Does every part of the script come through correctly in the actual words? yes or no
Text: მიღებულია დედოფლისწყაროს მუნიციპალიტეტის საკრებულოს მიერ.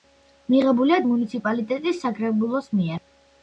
no